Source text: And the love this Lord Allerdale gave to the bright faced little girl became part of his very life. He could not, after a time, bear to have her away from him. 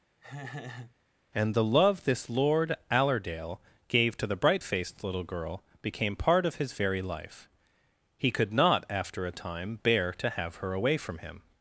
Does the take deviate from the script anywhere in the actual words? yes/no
no